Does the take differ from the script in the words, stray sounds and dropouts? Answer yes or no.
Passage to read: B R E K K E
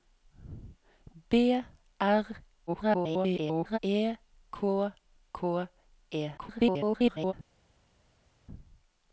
yes